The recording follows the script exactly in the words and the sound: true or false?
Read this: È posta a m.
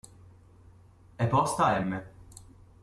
true